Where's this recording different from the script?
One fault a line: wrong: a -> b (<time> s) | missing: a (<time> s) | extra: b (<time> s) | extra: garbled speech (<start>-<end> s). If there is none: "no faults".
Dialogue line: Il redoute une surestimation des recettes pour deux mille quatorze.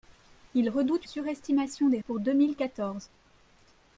missing: une (1.1 s)
missing: recettes (2.0 s)